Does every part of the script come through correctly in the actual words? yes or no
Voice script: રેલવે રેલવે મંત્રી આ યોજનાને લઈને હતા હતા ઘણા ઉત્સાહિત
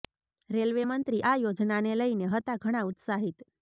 no